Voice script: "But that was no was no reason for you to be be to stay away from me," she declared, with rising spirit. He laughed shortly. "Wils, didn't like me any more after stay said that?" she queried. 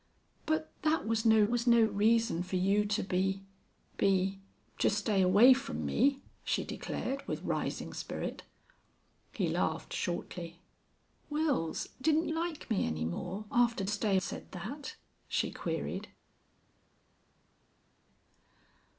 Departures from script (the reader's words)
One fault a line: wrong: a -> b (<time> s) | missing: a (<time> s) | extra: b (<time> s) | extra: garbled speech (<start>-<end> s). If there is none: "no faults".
no faults